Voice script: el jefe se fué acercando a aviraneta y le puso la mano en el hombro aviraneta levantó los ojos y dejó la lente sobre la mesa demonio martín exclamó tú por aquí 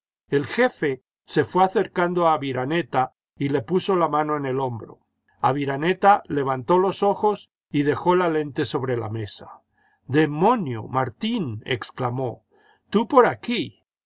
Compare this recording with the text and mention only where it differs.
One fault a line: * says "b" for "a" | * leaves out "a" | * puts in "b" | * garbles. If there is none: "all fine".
all fine